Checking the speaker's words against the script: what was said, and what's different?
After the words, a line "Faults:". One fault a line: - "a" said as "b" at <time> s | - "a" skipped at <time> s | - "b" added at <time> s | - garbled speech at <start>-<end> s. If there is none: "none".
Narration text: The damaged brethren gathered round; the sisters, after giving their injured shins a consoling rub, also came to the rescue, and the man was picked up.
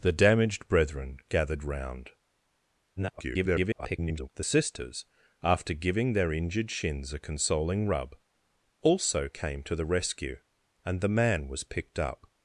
The damaged brethren gathered round; [garbled] the sisters, after giving their injured shins a consoling rub, also came to the rescue, and the man was picked up.
Faults:
- garbled speech at 3.0-4.3 s